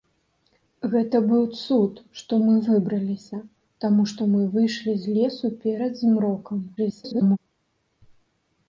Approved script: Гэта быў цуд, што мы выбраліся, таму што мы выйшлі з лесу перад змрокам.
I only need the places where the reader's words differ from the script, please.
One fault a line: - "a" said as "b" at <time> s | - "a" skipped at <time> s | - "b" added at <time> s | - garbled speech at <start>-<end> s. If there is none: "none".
- garbled speech at 6.8-7.4 s